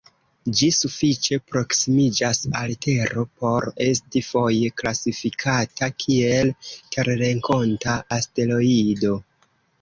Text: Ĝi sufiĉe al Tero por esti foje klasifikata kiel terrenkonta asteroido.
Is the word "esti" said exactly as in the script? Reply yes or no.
yes